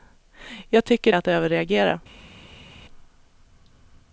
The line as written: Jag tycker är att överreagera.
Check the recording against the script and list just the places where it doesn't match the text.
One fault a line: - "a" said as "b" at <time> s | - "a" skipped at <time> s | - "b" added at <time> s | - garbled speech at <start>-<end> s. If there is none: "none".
none